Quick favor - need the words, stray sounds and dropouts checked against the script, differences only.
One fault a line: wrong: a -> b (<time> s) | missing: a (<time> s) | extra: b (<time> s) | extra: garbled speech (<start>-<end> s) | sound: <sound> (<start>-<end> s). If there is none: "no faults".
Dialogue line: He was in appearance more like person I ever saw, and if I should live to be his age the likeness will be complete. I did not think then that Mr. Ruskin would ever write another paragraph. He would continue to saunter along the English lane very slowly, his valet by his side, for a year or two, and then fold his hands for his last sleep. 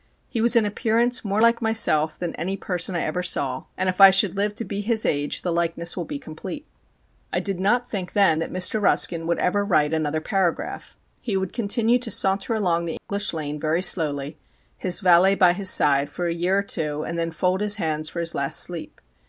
extra: myself than any (1.6 s)
sound: dropout (13.0-13.1 s)